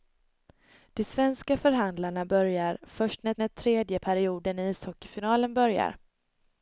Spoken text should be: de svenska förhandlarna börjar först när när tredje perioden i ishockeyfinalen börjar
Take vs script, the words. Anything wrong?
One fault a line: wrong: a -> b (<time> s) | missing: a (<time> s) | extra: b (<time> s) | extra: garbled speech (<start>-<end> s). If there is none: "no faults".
no faults